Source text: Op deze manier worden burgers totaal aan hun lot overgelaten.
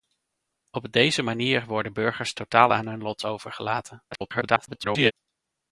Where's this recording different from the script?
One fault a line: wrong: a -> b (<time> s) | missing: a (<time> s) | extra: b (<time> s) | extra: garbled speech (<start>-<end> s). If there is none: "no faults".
extra: garbled speech (4.1-5.1 s)